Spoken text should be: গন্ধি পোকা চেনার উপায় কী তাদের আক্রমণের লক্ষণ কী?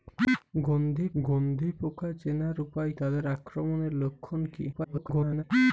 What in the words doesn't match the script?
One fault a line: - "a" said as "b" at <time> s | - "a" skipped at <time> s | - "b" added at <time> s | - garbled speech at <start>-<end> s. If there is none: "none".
- "গন্ধি" added at 1.2 s
- "কী" skipped at 2.9 s
- garbled speech at 4.7-5.4 s